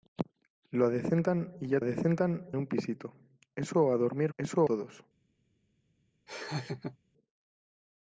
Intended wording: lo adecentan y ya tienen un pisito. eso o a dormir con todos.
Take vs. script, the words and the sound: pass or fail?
fail